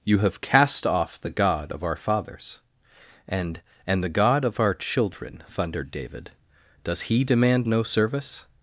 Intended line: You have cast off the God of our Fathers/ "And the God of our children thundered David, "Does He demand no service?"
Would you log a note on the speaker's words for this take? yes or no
yes